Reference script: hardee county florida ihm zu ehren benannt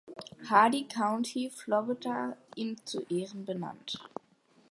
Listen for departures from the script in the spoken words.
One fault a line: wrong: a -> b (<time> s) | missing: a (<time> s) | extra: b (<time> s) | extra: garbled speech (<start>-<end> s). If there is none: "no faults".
no faults